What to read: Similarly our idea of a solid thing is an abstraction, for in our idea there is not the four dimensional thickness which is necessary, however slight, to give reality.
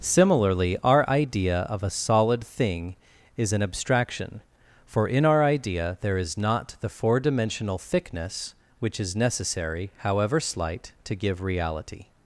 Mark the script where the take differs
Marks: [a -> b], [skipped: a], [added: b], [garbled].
Similarly our idea of a solid thing is an abstraction, for in our idea there is not the four dimensional thickness which is necessary, however slight, to give reality.